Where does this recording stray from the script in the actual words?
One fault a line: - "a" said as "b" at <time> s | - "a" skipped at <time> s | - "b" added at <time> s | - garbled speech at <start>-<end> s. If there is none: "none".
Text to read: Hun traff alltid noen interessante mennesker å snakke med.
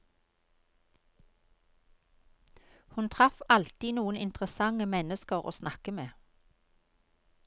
none